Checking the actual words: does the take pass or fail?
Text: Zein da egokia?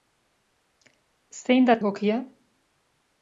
pass